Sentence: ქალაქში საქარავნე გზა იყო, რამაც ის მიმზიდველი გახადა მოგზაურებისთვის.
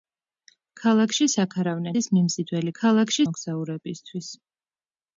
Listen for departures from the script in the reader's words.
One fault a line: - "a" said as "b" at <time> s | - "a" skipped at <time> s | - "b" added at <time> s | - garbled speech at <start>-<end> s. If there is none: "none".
- "გზა იყო რამაც" skipped at 1.9 s
- "გახადა" said as "ქალაქში" at 2.8 s